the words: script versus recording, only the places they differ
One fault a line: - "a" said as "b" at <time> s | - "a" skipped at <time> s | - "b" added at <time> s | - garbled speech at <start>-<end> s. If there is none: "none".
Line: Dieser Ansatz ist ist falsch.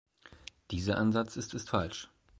none